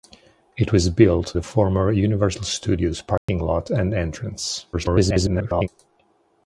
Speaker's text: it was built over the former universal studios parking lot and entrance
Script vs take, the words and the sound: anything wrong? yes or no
yes